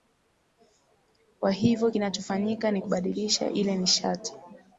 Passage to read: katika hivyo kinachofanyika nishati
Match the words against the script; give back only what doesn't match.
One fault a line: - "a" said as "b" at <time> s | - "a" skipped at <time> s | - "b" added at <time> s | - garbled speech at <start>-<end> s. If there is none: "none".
- "katika" said as "kwa" at 1.4 s
- "ni kubadilisha ile" added at 2.7 s